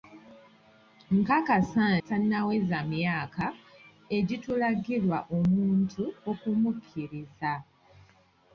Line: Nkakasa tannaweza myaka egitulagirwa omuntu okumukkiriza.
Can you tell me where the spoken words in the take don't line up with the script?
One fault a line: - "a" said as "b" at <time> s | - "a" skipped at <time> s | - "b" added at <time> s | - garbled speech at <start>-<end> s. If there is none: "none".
none